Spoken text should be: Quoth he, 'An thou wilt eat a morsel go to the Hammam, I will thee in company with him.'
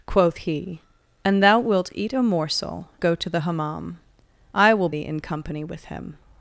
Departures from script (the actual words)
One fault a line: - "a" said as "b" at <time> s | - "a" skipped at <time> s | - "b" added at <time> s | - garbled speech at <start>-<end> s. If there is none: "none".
none